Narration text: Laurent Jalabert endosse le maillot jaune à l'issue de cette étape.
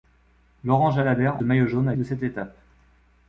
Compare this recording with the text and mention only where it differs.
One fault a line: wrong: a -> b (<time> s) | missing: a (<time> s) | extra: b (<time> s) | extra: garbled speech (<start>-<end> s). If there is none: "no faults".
missing: endosse (1.4 s)
missing: l'issue (1.9 s)